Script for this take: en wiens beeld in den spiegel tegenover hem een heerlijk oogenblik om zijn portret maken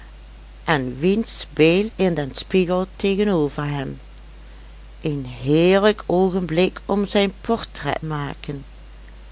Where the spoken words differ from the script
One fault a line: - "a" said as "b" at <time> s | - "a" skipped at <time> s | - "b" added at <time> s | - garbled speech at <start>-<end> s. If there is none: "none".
none